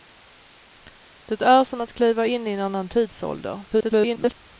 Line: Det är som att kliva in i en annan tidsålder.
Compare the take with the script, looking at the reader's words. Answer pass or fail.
fail